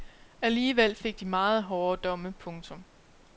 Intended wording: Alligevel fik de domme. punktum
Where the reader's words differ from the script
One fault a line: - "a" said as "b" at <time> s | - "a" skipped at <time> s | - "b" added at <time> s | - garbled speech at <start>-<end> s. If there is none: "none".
- "meget hårde" added at 1.2 s